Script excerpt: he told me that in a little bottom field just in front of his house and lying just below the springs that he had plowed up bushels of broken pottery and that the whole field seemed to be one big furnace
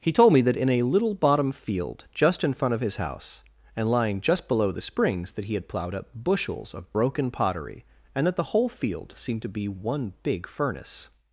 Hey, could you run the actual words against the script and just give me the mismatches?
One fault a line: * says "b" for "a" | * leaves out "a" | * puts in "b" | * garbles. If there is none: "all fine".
all fine